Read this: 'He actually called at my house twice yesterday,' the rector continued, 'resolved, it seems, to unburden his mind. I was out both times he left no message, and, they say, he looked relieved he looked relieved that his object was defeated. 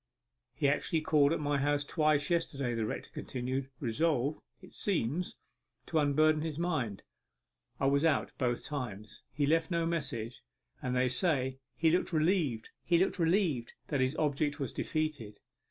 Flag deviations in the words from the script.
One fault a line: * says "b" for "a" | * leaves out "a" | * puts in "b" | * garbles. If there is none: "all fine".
all fine